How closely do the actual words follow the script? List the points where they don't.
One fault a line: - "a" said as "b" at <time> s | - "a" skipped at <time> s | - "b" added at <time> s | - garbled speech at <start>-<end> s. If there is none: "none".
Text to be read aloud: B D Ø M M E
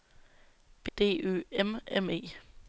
none